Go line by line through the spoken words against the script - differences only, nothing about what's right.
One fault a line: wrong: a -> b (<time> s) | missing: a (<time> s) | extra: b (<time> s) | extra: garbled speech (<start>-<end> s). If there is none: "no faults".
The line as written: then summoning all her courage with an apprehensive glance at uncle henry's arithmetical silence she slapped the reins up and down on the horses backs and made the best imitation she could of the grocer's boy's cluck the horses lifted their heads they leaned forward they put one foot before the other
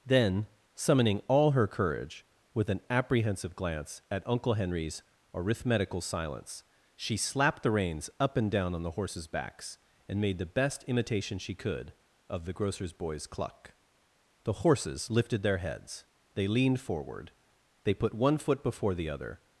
no faults